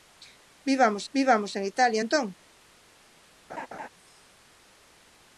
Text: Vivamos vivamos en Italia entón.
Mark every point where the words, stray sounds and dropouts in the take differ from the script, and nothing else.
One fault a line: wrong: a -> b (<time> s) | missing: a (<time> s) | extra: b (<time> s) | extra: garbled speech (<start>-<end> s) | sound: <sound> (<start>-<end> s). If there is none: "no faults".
sound: laugh (3.5-3.9 s)